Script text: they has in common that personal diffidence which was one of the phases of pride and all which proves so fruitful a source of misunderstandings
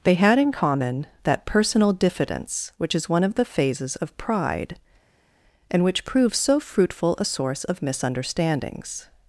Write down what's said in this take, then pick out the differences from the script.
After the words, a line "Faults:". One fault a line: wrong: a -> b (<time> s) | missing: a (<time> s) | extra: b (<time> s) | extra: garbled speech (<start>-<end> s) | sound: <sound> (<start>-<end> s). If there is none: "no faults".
they had in common that personal diffidence which is one of the phases of pride and which proves so fruitful a source of misunderstandings
Faults:
wrong: has -> had (0.1 s)
wrong: was -> is (2.9 s)
missing: all (5.8 s)